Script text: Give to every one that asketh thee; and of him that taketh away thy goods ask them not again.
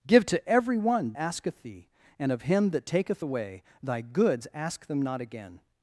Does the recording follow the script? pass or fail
fail